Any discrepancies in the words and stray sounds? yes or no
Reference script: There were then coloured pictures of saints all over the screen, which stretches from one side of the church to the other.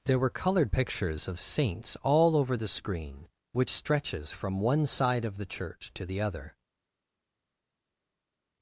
yes